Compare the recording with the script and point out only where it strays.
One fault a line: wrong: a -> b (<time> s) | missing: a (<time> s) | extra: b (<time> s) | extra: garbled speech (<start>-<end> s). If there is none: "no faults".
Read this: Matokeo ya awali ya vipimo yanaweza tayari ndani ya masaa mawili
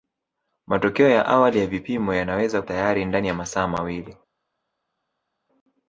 no faults